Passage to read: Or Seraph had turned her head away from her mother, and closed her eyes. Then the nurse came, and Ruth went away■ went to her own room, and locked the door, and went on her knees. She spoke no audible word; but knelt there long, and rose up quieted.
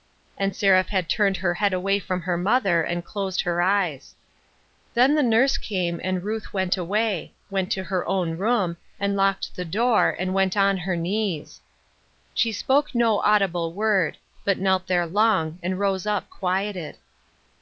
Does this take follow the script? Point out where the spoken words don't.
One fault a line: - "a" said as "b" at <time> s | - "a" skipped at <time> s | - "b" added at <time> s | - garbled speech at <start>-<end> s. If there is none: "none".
- "Or" said as "And" at 0.3 s